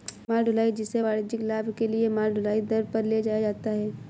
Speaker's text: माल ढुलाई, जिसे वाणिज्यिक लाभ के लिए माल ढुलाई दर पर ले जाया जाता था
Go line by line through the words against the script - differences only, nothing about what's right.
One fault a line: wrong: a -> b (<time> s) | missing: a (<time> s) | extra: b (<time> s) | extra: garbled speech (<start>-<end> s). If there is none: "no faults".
wrong: था -> है (3.7 s)